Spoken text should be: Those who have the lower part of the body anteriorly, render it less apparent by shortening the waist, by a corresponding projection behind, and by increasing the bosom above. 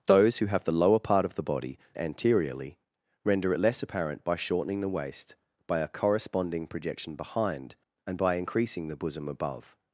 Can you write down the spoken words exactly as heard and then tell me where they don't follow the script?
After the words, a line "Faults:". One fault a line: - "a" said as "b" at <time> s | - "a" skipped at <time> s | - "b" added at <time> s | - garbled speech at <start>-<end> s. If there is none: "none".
Those who have the lower part of the body anteriorly, render it less apparent by shortening the waist, by a corresponding projection behind, and by increasing the bosom above.
Faults:
none